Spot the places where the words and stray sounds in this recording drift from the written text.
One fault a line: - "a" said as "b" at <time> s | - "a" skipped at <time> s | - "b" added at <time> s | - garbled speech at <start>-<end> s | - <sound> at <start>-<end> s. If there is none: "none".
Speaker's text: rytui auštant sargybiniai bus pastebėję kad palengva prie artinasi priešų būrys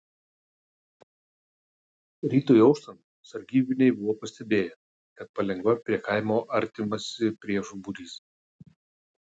- "bus" said as "buvo" at 4.0 s
- "kaimo" added at 6.1 s